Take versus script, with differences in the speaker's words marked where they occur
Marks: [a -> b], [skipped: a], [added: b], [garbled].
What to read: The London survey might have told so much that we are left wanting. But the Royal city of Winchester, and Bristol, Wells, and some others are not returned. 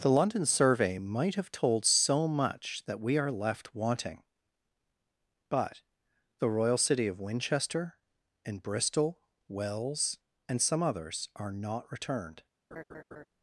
The London survey might have told so much that we are left wanting. But the Royal city of Winchester, and Bristol, Wells, and some others are not returned.